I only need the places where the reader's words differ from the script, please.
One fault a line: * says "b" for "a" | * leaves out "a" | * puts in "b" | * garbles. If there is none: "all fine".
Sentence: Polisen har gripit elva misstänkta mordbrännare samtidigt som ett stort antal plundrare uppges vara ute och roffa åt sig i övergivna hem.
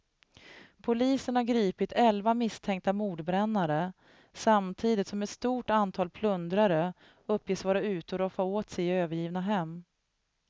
all fine